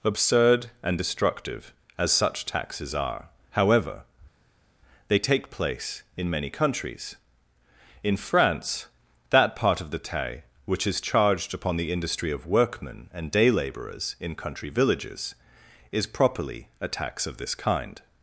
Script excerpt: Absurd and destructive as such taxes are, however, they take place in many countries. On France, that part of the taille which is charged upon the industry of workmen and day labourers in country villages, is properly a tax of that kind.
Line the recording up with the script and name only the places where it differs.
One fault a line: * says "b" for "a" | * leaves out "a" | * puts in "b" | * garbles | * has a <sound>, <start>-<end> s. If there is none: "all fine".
* says "In" for "On"
* says "this" for "that"